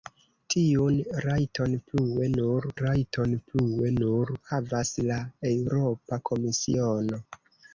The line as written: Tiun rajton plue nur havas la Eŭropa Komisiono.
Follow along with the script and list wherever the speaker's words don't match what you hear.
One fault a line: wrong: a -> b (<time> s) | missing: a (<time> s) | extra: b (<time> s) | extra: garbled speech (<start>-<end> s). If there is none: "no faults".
extra: rajton plue nur (2.8 s)